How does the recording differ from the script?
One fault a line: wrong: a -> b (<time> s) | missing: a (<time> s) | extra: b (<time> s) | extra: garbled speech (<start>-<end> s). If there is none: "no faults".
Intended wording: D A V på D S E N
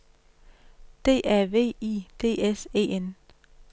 wrong: på -> I (1.8 s)